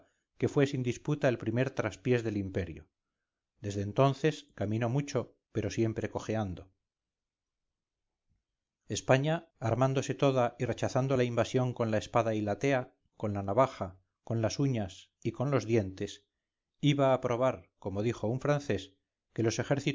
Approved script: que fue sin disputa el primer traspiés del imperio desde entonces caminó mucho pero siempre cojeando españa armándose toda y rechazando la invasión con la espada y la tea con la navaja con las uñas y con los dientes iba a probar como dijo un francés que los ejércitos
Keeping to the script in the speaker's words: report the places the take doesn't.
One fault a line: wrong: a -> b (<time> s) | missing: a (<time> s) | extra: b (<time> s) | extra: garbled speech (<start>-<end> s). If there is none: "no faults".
no faults